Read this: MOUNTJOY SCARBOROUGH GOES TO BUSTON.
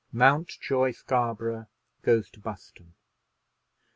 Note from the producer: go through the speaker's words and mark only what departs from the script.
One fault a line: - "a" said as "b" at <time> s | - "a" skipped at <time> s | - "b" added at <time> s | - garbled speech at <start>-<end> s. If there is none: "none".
none